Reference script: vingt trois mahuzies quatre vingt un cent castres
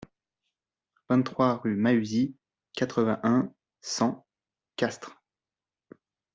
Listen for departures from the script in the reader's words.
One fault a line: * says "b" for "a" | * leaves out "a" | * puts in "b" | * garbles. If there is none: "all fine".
* puts in "rue"